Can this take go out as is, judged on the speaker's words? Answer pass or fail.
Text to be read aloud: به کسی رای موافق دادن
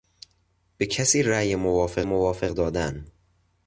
fail